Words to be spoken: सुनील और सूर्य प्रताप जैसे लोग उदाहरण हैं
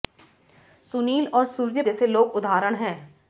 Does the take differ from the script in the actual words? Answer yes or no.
yes